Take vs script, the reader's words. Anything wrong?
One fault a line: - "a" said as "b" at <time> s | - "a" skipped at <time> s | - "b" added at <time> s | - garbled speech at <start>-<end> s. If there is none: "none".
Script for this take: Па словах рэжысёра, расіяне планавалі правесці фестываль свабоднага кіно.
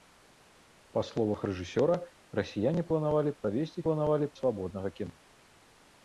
- "фестываль" said as "планавалі" at 3.9 s